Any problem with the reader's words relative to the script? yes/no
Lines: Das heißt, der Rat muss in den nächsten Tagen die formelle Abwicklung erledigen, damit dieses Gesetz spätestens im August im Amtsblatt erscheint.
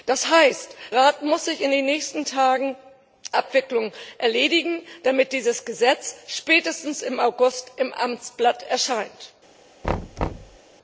yes